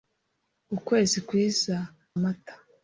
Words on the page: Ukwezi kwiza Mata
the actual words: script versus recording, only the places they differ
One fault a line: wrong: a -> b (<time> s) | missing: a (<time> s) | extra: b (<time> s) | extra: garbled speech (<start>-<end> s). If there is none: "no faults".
no faults